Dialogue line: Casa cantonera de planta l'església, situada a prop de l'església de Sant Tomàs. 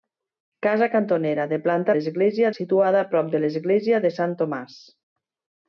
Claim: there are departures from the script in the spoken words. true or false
false